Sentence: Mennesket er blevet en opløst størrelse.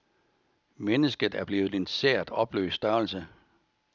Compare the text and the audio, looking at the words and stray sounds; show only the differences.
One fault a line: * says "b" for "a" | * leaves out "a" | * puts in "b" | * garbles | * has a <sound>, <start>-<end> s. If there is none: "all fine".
* puts in "sært"